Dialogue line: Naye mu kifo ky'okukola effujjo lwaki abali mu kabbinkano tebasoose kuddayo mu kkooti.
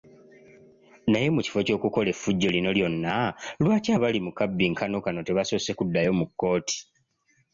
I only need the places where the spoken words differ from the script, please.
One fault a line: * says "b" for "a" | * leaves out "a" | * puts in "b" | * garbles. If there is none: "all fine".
* puts in "lino lyonna"
* puts in "kano"